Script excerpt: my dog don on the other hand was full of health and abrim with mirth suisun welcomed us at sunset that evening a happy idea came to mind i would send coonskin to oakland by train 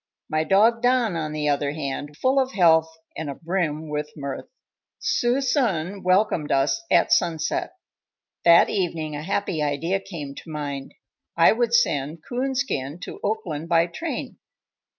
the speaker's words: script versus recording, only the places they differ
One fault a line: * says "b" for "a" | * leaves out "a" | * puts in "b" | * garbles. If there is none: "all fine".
* leaves out "was"